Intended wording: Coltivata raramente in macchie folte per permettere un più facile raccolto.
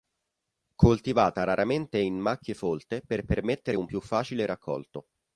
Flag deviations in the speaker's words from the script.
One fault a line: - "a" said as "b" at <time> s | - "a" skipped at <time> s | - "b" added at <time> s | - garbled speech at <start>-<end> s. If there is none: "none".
none